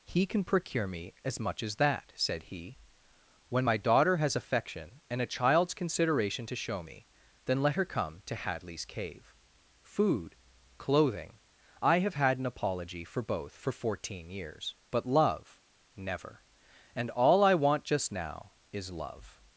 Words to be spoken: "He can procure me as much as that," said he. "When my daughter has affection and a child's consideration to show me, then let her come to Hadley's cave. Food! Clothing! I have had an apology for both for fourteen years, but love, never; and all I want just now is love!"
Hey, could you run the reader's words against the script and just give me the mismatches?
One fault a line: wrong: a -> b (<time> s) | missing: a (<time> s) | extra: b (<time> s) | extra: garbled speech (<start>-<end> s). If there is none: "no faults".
no faults